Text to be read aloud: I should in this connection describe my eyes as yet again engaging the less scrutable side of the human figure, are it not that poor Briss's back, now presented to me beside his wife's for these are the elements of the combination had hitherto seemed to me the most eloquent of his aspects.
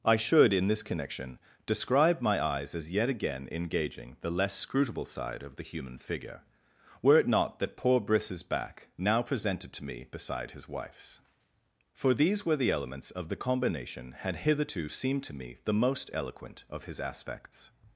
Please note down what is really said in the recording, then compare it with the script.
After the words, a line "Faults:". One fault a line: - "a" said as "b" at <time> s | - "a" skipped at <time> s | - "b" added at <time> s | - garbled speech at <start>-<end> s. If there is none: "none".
I should in this connection describe my eyes as yet again engaging the less scrutable side of the human figure, were it not that poor Briss's back, now presented to me beside his wife's for these were the elements of the combination had hitherto seemed to me the most eloquent of his aspects.
Faults:
- "are" said as "were" at 7.0 s
- "are" said as "were" at 12.4 s